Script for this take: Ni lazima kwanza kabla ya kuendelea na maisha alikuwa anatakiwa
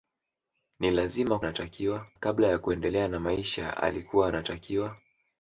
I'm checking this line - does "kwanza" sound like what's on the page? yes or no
no